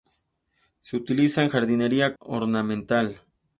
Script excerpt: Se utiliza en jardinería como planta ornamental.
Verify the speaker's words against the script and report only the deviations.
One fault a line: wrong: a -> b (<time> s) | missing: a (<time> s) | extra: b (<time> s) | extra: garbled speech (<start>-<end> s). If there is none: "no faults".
missing: como planta (2.1 s)